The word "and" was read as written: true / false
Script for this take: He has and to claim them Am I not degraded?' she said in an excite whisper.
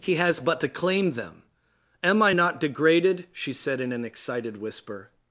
false